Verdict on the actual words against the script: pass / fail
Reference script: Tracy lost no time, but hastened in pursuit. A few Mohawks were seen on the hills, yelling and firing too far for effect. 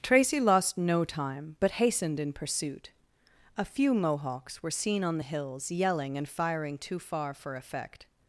pass